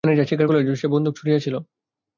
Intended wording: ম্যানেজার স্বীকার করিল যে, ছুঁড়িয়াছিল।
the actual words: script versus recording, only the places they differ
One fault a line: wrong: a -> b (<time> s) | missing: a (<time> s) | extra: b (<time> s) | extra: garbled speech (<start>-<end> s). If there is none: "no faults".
extra: সে বন্দুক (0.8 s)